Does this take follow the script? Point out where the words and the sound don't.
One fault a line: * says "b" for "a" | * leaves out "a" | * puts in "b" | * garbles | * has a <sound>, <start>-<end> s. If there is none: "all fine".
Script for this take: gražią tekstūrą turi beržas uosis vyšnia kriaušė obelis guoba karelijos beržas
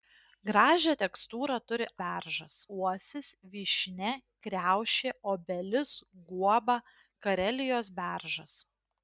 all fine